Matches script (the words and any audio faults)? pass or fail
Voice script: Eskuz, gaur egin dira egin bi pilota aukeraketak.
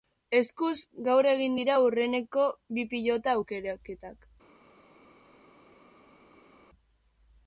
fail